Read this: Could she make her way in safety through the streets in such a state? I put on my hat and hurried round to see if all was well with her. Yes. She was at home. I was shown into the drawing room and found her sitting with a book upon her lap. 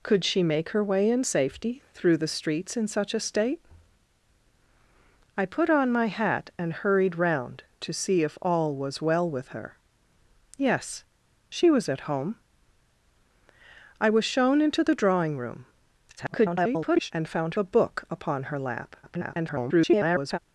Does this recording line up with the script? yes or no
no